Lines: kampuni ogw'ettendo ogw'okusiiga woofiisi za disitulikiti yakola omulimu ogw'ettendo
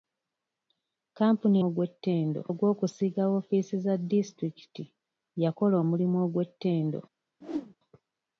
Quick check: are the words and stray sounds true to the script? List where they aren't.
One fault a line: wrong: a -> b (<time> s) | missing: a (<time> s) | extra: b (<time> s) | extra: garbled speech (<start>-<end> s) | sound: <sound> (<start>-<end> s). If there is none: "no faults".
sound: whoosh (7.4-7.8 s)